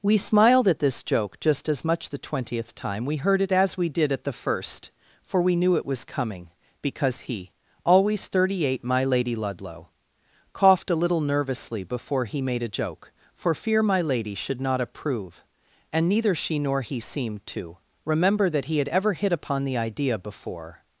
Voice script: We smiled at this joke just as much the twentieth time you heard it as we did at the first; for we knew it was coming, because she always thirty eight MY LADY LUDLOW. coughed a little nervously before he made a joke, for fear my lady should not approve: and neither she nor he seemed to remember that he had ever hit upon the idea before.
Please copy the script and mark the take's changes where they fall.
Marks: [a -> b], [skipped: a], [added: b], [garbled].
We smiled at this joke just as much the twentieth time [you -> we] heard it as we did at the first; for we knew it was coming, because [she -> he] always thirty eight MY LADY LUDLOW. coughed a little nervously before he made a joke, for fear my lady should not approve: and neither she nor he seemed to remember that he had ever hit upon the idea before.